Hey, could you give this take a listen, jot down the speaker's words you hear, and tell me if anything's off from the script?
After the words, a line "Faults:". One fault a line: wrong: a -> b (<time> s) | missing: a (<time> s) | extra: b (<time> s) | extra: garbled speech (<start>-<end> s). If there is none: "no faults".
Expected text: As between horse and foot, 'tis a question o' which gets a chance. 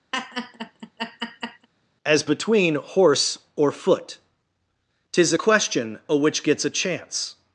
As between horse or foot, 'tis a question o' which gets a chance.
Faults:
wrong: and -> or (3.6 s)